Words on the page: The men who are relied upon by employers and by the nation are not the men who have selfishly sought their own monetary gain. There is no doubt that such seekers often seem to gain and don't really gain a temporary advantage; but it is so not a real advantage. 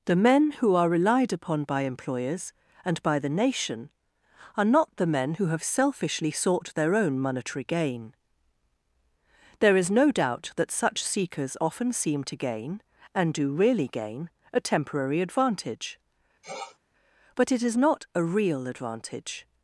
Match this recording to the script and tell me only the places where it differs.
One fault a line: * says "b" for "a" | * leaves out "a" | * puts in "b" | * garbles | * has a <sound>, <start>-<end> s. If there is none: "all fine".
* says "do" for "don't"
* has a sniff, 16.4-16.8 s
* leaves out "so"